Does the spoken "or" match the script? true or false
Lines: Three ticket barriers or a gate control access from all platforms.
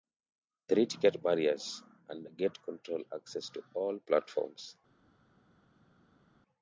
false